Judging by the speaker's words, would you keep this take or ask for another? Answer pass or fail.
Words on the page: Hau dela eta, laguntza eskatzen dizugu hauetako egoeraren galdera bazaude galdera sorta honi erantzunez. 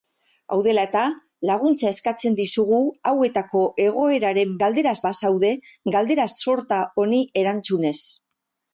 pass